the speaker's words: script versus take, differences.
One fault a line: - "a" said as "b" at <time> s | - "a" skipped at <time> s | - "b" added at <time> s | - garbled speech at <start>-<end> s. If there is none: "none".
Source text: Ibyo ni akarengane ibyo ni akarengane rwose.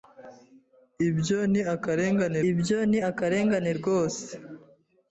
none